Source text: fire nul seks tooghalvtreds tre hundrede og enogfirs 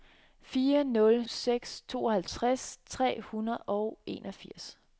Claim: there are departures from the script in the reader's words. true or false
false